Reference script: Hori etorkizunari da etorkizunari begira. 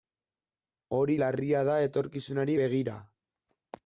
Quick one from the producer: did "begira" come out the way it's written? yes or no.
yes